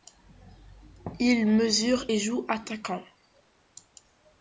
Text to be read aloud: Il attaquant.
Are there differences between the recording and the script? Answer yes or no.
yes